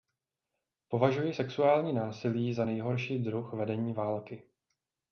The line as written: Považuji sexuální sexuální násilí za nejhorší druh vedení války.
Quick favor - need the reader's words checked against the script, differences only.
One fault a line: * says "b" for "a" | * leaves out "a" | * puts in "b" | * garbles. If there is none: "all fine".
* leaves out "sexuální"